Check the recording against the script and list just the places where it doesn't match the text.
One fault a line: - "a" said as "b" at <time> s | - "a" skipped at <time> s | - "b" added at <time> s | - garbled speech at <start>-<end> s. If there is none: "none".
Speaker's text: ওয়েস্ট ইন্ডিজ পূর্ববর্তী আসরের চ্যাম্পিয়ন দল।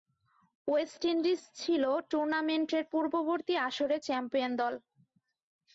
- "ছিল টুর্নামেন্টের" added at 1.6 s